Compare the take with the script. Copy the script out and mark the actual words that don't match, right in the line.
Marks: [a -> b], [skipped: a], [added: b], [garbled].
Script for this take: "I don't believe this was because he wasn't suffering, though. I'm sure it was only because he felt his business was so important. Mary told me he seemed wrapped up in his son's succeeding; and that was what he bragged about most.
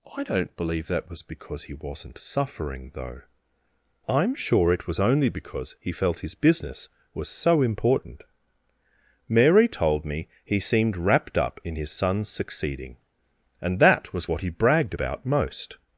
"I don't believe [this -> that] was because he wasn't suffering, though. I'm sure it was only because he felt his business was so important. Mary told me he seemed wrapped up in his son's succeeding; and that was what he bragged about most.